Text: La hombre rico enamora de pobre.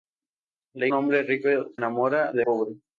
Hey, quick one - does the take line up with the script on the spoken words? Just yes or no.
yes